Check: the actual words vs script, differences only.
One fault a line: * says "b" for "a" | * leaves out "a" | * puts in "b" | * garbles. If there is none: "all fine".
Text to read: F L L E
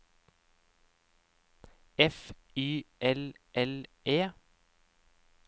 * puts in "Y"